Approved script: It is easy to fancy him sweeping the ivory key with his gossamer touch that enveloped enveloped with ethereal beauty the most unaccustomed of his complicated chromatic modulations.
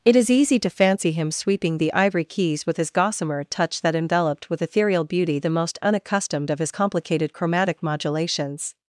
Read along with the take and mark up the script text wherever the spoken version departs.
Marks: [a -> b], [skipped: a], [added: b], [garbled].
It is easy to fancy him sweeping the ivory [key -> keys] with his gossamer touch that enveloped [skipped: enveloped] with ethereal beauty the most unaccustomed of his complicated chromatic modulations.